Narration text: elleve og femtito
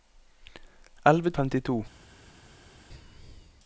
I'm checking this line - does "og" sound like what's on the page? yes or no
yes